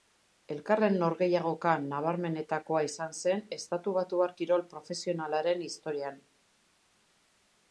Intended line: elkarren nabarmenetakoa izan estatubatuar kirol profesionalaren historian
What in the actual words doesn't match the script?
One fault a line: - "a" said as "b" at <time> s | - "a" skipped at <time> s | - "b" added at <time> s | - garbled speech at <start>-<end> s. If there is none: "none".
- "norgehiagoka" added at 1.0 s
- "zen" added at 3.2 s